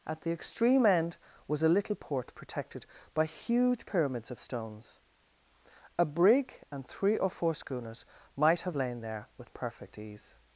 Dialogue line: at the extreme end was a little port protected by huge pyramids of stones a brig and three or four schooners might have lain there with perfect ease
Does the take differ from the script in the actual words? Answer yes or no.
no